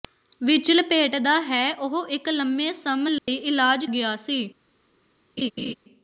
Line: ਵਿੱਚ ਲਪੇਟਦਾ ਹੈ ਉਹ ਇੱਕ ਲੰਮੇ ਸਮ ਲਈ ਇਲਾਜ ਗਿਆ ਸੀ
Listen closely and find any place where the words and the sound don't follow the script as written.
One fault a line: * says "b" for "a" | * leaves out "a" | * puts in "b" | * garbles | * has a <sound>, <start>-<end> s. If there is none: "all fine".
* has a dropout, 3.2-3.3 s
* has a laugh, 5.4-5.7 s